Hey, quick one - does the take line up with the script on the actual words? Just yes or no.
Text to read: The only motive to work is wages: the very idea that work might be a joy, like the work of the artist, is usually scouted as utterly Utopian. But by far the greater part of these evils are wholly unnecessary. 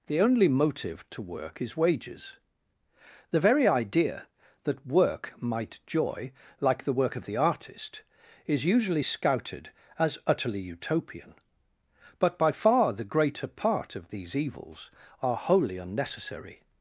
no